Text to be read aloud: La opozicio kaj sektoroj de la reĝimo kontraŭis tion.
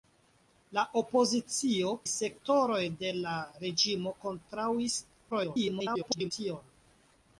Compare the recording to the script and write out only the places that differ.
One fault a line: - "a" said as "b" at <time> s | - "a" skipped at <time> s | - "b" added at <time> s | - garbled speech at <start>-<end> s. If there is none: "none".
- "kaj" skipped at 1.9 s
- garbled speech at 5.3-6.3 s